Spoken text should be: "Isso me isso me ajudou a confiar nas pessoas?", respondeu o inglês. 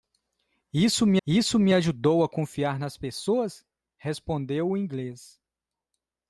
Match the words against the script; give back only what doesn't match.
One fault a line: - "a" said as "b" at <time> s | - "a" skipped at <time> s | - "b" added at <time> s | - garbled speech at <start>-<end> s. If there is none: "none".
none